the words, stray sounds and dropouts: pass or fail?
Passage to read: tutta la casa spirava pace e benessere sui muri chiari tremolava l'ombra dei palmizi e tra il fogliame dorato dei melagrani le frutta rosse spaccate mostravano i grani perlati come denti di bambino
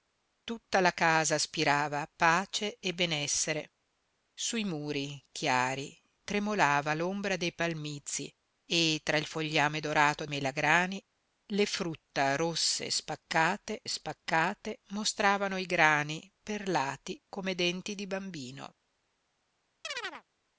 fail